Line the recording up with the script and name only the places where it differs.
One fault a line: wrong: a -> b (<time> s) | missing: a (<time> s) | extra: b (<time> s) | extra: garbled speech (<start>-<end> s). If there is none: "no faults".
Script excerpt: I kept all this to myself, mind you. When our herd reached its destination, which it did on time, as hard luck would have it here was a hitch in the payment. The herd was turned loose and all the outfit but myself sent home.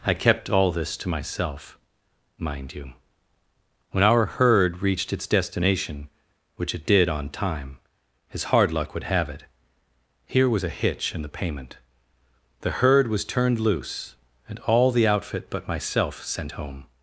no faults